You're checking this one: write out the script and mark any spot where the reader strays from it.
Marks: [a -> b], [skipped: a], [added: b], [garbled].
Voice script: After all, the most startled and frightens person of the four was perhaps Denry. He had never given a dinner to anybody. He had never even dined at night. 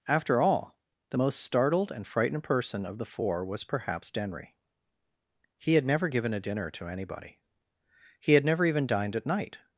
After all, the most startled and [frightens -> frightened] person of the four was perhaps Denry. He had never given a dinner to anybody. He had never even dined at night.